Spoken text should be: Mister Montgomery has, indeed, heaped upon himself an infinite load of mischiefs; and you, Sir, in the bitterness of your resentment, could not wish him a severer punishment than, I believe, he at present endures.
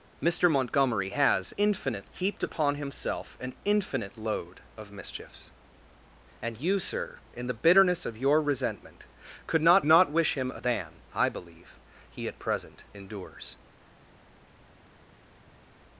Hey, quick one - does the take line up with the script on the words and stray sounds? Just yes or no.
no